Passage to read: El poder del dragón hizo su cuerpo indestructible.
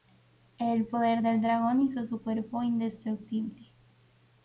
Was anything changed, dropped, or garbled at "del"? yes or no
no